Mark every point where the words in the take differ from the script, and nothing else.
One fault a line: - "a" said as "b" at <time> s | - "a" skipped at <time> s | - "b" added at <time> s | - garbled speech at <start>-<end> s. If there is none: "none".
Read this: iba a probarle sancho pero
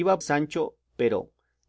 - "probarle" skipped at 0.2 s